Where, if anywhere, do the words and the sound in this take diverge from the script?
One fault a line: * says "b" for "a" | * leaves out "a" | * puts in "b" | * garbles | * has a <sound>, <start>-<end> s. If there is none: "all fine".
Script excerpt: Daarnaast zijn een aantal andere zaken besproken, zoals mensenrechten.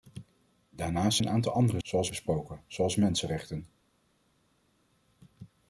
* leaves out "zijn"
* says "zoals" for "zaken"